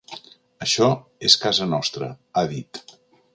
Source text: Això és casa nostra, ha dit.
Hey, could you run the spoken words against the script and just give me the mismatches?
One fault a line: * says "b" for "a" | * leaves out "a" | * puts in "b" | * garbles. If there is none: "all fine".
all fine